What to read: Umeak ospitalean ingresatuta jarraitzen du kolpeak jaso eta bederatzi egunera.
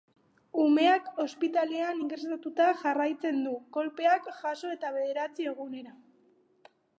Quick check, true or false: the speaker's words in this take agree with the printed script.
true